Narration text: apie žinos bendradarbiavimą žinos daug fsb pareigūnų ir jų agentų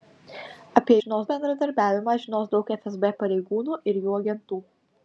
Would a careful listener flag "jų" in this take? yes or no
no